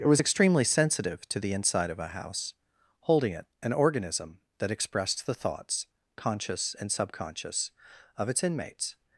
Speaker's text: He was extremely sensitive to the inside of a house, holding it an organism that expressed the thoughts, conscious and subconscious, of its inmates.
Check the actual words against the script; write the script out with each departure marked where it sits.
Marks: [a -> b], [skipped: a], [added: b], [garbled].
[He -> It] was extremely sensitive to the inside of a house, holding it an organism that expressed the thoughts, conscious and subconscious, of its inmates.